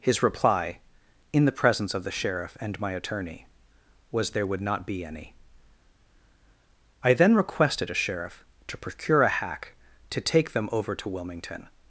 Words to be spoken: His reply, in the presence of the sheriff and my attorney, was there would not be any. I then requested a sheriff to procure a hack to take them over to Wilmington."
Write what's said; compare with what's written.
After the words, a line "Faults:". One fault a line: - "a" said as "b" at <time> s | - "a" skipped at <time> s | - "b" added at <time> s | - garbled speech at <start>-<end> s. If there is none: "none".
His reply, in the presence of the sheriff and my attorney, was there would not be any. I then requested a sheriff to procure a hack to take them over to Wilmington."
Faults:
none